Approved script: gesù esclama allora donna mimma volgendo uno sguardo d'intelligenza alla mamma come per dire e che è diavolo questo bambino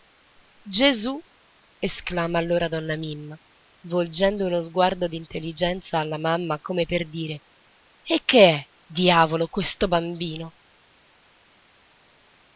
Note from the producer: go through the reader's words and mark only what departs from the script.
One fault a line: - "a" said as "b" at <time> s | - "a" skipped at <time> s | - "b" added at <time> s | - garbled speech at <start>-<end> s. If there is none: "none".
none